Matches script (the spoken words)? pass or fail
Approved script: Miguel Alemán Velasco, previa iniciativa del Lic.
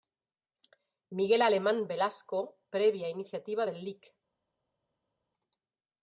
pass